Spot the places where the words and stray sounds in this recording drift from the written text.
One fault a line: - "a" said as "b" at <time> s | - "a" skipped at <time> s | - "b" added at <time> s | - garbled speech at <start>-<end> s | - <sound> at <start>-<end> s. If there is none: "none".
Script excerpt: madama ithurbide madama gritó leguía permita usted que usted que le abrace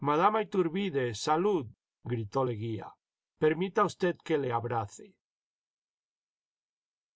- "madama" said as "jsalud" at 1.1 s
- "usted que" skipped at 4.4 s